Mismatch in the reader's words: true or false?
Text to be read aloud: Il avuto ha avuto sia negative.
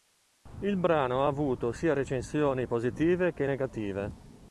true